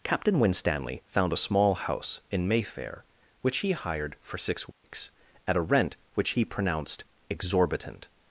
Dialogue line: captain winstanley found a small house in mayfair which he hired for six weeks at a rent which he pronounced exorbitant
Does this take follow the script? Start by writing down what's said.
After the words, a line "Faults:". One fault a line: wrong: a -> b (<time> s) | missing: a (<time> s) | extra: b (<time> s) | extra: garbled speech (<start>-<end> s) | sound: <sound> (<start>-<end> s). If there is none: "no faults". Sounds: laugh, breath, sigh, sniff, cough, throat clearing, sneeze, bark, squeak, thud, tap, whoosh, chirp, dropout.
captain winstanley found a small house in mayfair which he hired for six weeks at a rent which he pronounced exorbitant
Faults:
sound: dropout (4.7-4.8 s)